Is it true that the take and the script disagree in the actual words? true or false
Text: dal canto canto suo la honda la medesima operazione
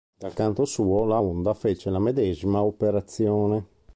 true